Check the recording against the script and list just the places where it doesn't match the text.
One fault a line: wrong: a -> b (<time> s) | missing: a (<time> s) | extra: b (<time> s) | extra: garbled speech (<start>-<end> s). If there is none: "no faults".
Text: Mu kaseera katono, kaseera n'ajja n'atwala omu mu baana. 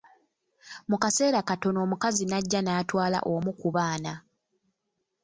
wrong: kaseera -> omukazi (1.9 s)
wrong: mu -> ku (3.6 s)